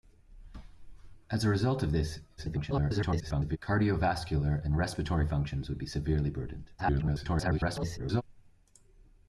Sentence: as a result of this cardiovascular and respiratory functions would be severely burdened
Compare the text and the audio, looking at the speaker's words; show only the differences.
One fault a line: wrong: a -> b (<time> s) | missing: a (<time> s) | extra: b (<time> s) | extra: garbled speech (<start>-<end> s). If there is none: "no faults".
extra: garbled speech (2.4-3.6 s)
extra: garbled speech (6.8-8.2 s)